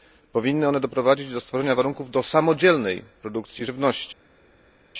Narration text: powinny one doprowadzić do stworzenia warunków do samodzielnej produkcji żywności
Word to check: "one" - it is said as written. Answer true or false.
true